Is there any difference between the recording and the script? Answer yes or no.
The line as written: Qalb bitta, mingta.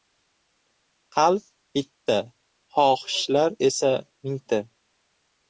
yes